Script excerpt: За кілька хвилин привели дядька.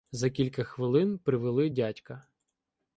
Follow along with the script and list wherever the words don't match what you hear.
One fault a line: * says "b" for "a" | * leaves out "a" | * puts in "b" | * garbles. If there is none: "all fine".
all fine